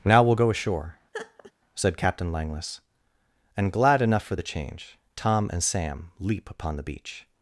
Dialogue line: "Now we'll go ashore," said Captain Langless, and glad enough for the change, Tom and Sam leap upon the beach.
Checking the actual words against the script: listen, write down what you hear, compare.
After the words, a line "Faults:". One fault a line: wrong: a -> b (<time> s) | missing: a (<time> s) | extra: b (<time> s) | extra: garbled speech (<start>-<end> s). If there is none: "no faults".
"Now we'll go ashore," said Captain Langless, and glad enough for the change, Tom and Sam leap upon the beach.
Faults:
no faults